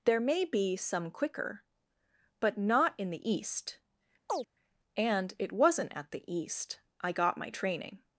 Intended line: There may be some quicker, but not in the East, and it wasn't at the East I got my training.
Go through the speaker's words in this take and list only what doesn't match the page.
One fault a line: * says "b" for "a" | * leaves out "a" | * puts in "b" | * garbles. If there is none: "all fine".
all fine